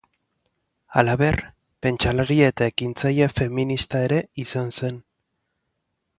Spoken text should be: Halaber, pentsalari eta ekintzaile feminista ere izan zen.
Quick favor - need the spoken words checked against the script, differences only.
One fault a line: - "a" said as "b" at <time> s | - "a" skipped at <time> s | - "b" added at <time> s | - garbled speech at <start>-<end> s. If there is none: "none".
none